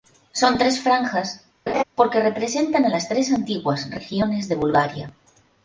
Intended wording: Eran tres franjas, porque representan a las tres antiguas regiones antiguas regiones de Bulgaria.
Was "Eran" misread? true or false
true